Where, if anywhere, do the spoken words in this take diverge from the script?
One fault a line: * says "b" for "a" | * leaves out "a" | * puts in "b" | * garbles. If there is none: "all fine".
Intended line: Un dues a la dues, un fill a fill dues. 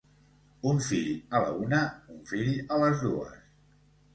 * says "fill" for "dues"
* says "una" for "dues"
* says "les" for "fill"